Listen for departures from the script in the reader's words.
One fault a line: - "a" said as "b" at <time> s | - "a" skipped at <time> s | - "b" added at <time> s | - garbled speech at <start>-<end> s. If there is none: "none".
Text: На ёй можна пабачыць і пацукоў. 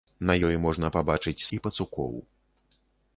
none